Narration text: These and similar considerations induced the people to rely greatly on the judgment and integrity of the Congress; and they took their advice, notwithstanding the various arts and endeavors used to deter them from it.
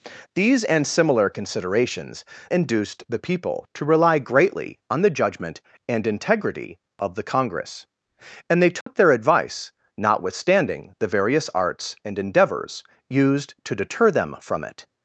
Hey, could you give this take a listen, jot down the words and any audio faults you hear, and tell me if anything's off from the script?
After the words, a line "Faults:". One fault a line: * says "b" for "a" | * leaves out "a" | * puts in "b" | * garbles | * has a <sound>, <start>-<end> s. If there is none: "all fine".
These and similar considerations induced the people to rely greatly on the judgment and integrity of the Congress; and they took their advice, notwithstanding the various arts and endeavors used to deter them from it.
Faults:
* has a dropout, 8.8-8.9 s